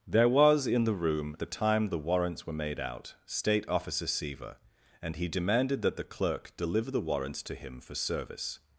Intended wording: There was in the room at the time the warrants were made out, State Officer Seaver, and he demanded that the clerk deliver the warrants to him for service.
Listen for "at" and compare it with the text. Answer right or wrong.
wrong